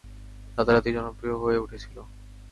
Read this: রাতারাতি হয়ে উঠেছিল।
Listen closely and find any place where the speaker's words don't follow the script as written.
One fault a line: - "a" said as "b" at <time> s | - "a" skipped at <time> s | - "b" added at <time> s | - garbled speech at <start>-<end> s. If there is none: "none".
- "জনপ্রিয়" added at 0.9 s